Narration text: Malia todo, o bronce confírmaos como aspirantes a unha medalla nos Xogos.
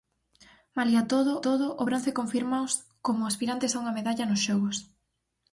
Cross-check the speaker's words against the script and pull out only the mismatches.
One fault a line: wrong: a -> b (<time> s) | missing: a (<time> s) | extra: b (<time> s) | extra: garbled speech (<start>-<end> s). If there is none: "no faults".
extra: todo (1.5 s)